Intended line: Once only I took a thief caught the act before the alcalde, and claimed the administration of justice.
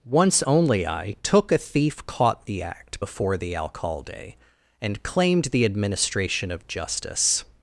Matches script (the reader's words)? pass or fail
pass